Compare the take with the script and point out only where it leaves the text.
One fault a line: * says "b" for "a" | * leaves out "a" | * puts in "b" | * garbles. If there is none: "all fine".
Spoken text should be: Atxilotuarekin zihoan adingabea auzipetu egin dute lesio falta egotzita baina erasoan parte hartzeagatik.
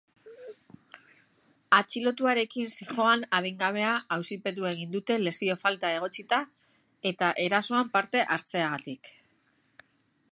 * says "eta" for "baina"